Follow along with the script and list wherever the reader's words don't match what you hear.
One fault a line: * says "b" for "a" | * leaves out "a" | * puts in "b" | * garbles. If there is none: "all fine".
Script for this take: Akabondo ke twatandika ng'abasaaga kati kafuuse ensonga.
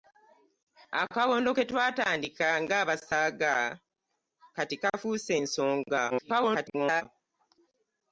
* garbles